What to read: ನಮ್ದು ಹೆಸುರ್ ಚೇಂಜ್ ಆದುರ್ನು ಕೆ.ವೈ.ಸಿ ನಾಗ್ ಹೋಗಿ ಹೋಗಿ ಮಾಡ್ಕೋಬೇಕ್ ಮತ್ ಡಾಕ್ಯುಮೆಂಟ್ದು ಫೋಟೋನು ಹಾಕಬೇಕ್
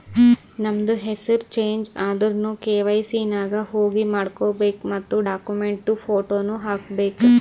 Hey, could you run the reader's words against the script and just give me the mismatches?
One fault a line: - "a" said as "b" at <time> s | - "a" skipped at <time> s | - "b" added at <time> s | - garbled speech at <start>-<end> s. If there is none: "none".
- "ಹೋಗಿ" skipped at 4.0 s